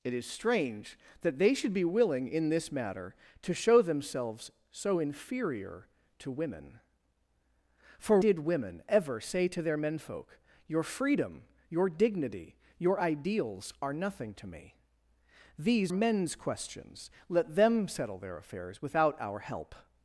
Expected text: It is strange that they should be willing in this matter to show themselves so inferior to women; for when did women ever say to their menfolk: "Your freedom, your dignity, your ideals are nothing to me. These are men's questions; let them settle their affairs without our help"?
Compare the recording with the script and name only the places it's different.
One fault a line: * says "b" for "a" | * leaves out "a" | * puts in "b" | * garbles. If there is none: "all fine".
* leaves out "when"
* leaves out "are"